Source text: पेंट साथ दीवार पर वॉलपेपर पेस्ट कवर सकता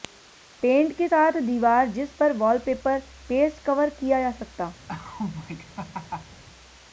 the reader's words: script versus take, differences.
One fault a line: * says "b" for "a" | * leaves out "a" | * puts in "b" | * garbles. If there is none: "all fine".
* puts in "के"
* puts in "जिस"
* puts in "किया जा"